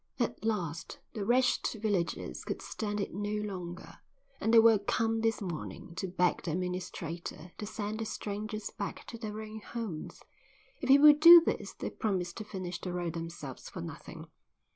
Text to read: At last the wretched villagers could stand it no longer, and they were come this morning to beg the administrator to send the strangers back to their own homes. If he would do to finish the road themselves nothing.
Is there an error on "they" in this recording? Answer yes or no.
no